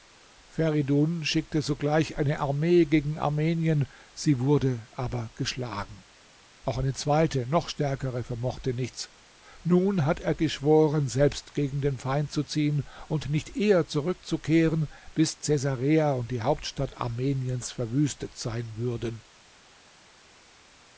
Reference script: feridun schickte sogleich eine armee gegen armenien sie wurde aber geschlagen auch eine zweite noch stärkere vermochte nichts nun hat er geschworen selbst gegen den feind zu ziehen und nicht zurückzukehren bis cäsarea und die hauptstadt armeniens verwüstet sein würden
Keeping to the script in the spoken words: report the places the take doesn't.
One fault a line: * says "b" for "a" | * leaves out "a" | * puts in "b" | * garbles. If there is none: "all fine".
* puts in "eher"